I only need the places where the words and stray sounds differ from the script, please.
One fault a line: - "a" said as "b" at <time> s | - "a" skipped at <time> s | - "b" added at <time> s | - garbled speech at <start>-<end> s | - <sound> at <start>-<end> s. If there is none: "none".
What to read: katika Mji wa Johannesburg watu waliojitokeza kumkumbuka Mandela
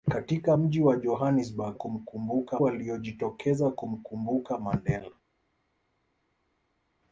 - "watu" said as "kumkumbuka" at 1.7 s